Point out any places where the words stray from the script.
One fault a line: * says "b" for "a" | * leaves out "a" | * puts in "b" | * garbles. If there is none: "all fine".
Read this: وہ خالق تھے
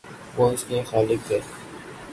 * puts in "اس کے"